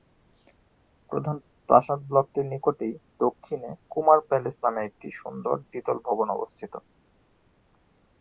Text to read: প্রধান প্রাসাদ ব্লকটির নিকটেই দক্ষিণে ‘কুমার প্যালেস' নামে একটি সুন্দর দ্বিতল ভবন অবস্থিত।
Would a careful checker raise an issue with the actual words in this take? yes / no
no